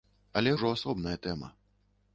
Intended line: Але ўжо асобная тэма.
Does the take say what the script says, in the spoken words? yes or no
yes